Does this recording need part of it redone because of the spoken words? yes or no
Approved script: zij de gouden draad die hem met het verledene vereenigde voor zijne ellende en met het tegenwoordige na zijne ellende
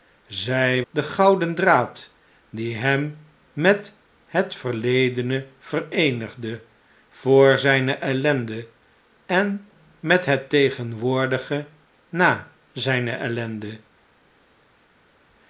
no